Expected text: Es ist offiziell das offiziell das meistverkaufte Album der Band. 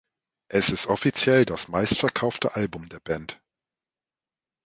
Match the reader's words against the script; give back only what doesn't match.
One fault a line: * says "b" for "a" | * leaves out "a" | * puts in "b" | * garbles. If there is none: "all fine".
* leaves out "offiziell das"